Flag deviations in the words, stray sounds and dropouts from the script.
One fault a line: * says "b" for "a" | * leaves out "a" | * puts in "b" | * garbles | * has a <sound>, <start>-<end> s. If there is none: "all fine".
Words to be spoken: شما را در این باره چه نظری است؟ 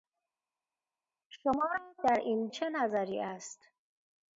* leaves out "باره"